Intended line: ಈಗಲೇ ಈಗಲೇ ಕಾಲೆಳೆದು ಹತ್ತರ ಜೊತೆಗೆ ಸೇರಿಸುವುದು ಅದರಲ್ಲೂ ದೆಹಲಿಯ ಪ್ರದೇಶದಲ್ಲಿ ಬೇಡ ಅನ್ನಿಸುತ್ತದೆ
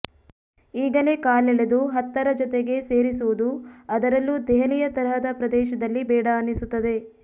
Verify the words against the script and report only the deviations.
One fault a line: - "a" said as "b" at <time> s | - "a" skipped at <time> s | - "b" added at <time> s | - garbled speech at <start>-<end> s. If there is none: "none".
- "ಈಗಲೇ" skipped at 1.1 s
- "ತರಹದ" added at 4.9 s